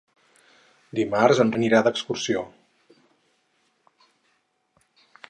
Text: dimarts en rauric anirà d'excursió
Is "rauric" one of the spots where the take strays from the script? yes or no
yes